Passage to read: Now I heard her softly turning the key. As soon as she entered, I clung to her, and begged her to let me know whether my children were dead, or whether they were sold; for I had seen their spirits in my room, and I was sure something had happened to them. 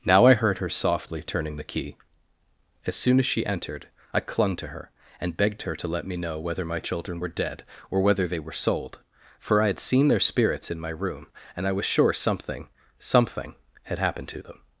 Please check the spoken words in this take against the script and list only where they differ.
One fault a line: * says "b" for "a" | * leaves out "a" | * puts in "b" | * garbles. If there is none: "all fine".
* puts in "something"